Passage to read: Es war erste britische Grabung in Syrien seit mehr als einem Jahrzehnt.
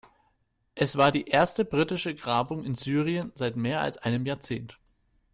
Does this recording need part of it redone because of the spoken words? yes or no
yes